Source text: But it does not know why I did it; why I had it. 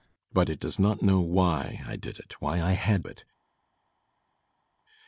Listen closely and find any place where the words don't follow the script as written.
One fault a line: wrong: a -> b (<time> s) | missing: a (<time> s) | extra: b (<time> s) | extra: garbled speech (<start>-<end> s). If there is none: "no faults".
no faults